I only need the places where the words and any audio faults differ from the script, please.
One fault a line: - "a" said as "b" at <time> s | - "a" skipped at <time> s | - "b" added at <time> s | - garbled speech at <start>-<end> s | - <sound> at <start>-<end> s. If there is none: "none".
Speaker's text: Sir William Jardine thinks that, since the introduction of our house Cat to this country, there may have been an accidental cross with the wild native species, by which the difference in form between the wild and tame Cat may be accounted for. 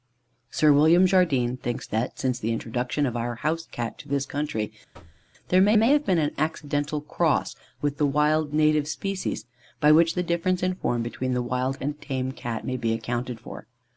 - thud at 4.9-5.3 s
- "may" added at 5.8 s